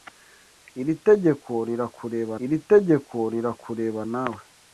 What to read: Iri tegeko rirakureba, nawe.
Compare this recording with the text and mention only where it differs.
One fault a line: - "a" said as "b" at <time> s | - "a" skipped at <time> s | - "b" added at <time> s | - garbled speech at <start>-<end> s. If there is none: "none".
- "iri tegeko rirakureba" added at 2.4 s